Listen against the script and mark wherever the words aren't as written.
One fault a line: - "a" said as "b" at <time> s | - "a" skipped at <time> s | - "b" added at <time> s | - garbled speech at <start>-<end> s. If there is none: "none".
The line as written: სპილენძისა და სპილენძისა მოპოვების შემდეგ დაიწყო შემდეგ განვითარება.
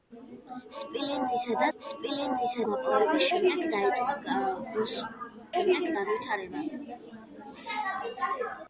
none